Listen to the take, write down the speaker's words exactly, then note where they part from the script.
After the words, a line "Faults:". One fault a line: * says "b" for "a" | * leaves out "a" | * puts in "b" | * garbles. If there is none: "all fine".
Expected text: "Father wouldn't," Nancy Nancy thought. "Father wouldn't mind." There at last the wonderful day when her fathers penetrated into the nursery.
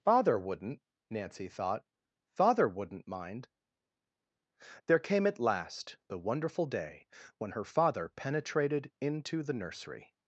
"Father wouldn't," Nancy thought. "Father wouldn't mind." There came at last the wonderful day when her father penetrated into the nursery.
Faults:
* leaves out "Nancy"
* puts in "came"
* says "father" for "fathers"